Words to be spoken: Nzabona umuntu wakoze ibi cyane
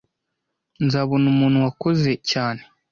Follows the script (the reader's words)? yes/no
no